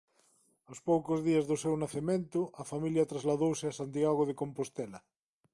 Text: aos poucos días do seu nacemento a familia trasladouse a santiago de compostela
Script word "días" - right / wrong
right